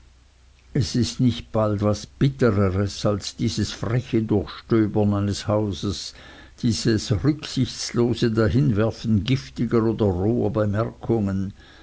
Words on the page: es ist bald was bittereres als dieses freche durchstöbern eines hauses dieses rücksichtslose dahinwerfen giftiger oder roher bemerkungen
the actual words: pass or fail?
fail